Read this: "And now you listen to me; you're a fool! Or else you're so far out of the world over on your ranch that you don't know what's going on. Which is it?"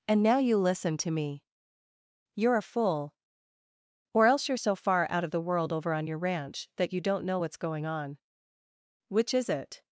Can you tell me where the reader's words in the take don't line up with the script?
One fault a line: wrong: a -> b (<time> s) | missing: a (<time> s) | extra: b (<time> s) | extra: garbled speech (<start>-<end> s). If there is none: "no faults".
no faults